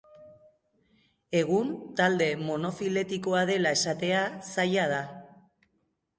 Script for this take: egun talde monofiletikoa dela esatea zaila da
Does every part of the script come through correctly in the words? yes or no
yes